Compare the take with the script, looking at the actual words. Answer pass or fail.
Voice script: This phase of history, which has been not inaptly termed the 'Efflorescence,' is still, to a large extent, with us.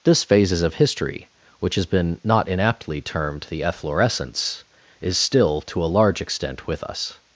fail